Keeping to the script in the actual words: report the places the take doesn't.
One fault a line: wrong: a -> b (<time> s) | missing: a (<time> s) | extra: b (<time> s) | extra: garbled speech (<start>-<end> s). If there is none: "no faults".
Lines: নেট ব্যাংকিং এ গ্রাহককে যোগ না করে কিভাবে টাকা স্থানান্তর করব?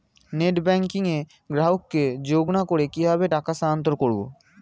no faults